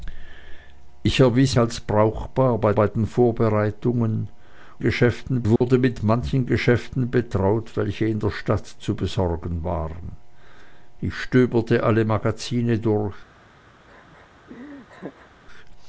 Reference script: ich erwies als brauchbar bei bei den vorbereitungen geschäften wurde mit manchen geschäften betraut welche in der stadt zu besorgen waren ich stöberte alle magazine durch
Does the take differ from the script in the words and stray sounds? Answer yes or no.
yes